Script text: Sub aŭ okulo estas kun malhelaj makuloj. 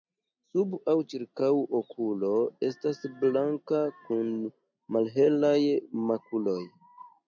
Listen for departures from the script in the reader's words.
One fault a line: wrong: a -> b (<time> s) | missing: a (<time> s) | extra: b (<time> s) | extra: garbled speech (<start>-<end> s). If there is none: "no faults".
extra: ĉirkaŭ (1.1 s)
extra: blanka (3.3 s)